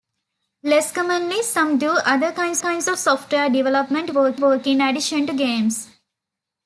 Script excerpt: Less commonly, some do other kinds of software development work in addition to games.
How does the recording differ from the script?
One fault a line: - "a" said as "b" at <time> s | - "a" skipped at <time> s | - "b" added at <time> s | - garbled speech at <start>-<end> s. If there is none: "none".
- "kinds" added at 2.6 s
- "work" added at 4.4 s